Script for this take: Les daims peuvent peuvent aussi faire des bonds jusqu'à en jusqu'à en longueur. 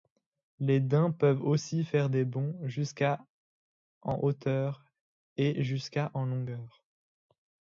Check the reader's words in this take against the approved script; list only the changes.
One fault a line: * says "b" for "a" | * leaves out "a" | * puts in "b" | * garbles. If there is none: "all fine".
* leaves out "peuvent"
* puts in "hauteur et"